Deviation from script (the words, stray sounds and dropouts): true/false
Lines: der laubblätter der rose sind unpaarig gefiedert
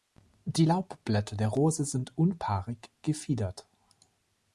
true